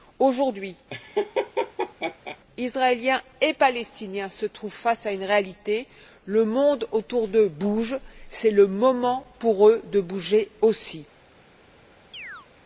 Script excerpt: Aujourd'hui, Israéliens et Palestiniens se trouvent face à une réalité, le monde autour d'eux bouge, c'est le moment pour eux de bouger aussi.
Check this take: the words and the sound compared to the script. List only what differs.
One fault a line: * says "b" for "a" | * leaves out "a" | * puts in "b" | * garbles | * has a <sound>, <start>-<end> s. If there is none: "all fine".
* has a laugh, 0.9-2.4 s
* has a chirp, 12.1-12.5 s